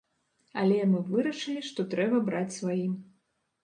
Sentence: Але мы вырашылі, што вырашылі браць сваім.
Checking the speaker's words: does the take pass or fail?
fail